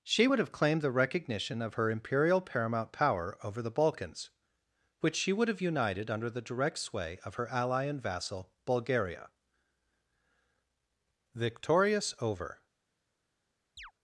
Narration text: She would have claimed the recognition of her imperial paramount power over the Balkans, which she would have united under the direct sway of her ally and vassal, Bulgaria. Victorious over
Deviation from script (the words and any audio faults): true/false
true